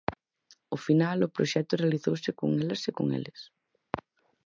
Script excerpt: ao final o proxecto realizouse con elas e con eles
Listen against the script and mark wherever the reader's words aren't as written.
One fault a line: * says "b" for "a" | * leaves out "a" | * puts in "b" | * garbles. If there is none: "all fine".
all fine